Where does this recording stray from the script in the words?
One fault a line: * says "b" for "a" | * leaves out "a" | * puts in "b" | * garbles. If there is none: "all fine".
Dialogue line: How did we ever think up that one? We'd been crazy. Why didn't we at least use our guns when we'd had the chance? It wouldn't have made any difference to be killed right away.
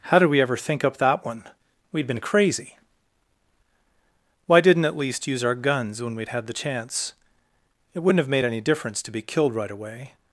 * leaves out "we"